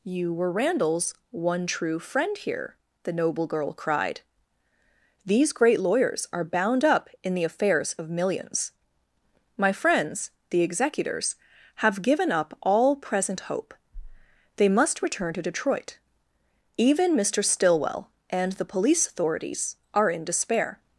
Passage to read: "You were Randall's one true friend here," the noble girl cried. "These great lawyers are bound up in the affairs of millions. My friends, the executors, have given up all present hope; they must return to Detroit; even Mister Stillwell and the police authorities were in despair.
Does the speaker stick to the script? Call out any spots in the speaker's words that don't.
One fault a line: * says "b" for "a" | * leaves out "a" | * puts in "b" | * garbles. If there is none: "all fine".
* says "are" for "were"